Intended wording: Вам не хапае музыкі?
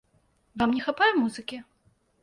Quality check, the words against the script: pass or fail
pass